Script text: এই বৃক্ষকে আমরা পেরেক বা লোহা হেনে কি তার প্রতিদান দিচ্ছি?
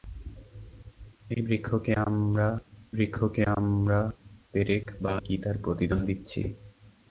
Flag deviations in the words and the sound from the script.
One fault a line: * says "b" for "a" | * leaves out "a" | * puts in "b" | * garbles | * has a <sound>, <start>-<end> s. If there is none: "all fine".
* puts in "বৃক্ষকে আমরা"
* leaves out "লোহা হেনে"